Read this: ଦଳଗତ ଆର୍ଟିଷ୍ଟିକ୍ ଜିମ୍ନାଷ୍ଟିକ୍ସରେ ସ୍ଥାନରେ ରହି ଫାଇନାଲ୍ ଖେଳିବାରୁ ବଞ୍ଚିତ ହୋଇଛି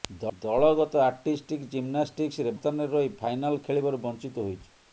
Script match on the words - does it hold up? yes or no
yes